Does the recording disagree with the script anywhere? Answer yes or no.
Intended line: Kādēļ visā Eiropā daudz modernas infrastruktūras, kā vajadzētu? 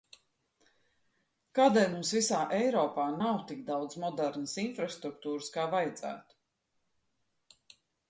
yes